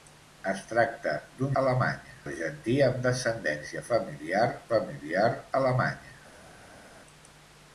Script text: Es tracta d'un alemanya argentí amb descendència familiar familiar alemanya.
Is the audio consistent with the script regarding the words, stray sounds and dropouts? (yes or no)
yes